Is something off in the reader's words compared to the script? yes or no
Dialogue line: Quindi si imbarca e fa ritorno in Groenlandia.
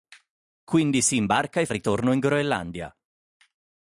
yes